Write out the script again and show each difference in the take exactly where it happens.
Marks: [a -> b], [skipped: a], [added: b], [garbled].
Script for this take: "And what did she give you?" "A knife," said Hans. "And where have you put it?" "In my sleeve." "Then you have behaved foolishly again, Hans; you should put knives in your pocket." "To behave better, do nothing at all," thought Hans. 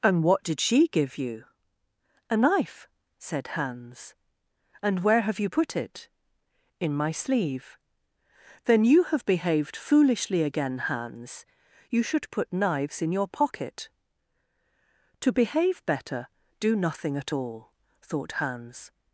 "And what did she give you?" "A knife," said Hans. "And where have you put it?" "In my sleeve." "Then you have behaved foolishly again, Hans; you should put knives in your pocket." "To behave better, do nothing at all," thought Hans.